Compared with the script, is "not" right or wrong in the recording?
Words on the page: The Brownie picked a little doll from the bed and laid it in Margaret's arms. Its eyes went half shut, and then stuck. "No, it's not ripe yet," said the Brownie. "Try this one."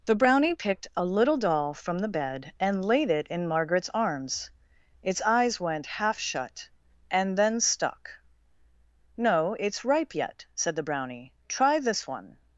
wrong